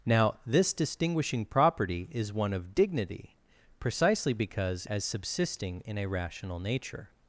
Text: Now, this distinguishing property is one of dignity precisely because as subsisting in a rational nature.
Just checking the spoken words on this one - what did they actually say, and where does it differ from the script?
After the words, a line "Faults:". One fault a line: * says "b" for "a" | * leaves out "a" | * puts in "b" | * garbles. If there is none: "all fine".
Now, this distinguishing property is one of dignity precisely because as subsisting in a rational nature.
Faults:
all fine